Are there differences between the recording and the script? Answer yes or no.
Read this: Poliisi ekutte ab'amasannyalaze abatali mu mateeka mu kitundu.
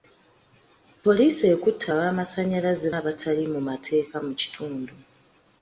no